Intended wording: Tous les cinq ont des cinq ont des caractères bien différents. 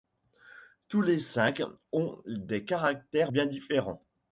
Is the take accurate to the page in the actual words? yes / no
no